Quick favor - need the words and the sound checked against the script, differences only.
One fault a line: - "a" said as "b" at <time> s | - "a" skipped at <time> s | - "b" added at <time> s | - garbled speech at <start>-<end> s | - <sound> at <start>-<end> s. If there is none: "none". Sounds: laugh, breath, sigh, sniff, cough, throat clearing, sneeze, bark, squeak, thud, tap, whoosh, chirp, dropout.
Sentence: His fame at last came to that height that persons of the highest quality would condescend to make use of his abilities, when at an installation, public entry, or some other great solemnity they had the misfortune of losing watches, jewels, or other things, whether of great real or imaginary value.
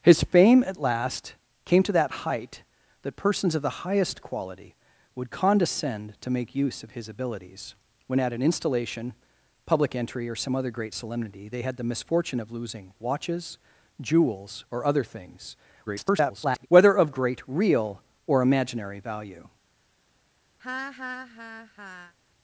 - garbled speech at 15.9-16.7 s
- laugh at 20.6-22.1 s